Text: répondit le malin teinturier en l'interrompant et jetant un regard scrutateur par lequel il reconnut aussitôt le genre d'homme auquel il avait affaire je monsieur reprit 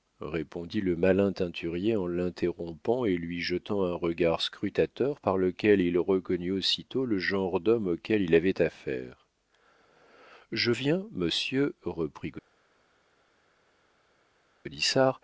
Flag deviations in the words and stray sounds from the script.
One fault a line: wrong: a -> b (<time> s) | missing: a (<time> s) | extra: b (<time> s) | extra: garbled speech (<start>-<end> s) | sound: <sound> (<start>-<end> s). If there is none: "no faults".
extra: lui (3.2 s)
extra: viens (10.7 s)